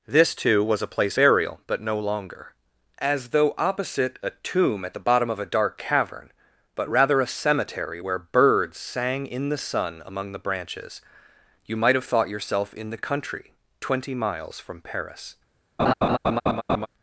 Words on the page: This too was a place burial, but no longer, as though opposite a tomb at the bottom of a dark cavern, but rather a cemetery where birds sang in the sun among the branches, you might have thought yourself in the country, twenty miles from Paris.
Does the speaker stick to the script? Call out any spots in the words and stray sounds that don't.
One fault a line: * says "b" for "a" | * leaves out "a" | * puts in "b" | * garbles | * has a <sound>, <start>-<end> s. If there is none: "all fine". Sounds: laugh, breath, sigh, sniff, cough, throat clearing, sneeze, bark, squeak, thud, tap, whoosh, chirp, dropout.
* has a laugh, 15.8-16.9 s